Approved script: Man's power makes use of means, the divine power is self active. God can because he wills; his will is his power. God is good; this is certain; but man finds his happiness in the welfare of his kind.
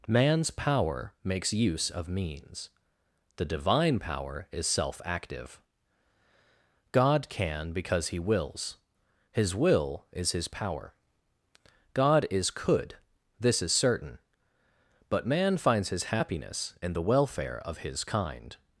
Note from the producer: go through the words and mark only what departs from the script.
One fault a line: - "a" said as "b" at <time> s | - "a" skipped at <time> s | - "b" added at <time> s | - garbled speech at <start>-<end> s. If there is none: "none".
- "good" said as "could" at 12.5 s